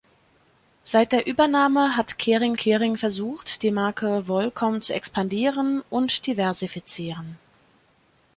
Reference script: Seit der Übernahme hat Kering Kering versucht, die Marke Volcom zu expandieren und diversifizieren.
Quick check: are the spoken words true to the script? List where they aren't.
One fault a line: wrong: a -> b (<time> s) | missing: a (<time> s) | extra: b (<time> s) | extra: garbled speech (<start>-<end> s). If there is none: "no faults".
no faults